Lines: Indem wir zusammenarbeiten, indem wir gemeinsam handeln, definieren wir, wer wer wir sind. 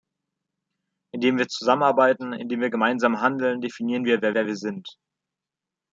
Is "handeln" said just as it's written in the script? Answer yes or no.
yes